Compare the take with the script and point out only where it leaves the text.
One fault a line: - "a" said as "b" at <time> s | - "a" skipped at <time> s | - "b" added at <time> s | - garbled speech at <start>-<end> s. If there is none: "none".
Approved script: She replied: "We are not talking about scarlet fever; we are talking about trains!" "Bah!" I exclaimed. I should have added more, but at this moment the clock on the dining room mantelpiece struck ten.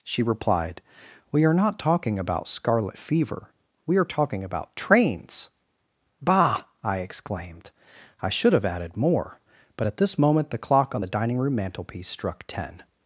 none